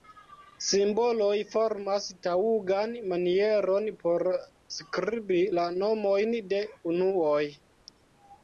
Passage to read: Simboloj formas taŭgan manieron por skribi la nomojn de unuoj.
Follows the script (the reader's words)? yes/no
yes